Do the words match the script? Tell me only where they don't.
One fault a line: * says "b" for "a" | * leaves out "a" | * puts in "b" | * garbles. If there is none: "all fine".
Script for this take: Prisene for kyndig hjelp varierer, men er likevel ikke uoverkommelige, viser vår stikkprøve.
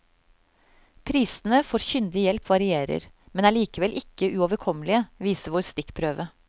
all fine